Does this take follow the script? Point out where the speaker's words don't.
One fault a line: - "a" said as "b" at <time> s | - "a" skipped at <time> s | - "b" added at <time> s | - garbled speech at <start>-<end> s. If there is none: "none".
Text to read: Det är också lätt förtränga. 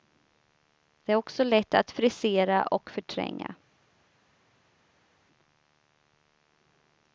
- "att frisera och" added at 1.7 s